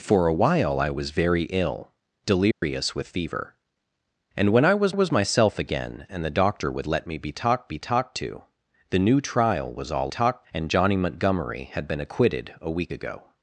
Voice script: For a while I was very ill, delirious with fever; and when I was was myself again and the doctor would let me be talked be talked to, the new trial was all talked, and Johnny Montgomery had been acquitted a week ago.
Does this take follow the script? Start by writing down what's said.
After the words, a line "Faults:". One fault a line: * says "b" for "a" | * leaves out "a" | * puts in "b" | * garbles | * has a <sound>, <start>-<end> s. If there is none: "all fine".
For a while I was very ill, delirious with fever; and when I was was myself again and the doctor would let me be talked be talked to, the new trial was all talked, and Johnny Montgomery had been acquitted a week ago.
Faults:
* has a dropout, 2.5-2.6 s